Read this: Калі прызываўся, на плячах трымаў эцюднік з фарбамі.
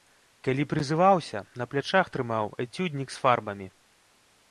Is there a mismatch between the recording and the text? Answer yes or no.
no